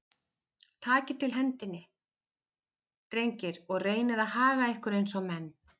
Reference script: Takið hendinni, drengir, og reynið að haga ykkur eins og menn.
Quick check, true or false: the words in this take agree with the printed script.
false